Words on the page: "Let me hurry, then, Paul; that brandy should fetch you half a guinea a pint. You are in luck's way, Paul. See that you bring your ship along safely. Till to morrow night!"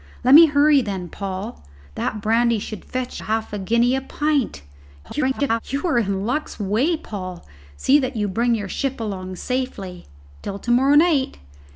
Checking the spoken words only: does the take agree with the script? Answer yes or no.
no